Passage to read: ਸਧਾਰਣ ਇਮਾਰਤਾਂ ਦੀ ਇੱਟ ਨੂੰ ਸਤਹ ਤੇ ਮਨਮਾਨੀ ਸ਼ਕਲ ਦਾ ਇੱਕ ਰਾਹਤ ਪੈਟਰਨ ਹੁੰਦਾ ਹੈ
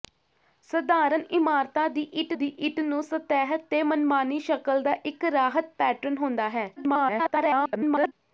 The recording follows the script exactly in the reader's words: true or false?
false